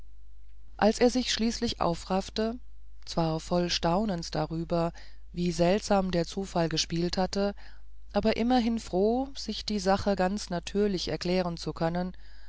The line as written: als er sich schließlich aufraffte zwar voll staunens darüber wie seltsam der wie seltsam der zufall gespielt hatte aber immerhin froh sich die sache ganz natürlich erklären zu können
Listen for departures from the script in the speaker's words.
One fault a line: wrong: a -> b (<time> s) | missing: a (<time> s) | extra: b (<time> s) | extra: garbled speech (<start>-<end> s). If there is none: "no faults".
missing: wie seltsam der (6.3 s)